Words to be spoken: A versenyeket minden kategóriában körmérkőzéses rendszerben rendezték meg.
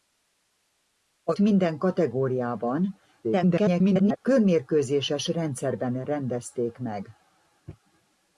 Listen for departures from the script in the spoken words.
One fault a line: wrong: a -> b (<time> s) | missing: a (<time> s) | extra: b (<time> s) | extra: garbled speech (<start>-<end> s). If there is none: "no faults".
missing: versenyeket (1.3 s)
extra: garbled speech (3.2-4.2 s)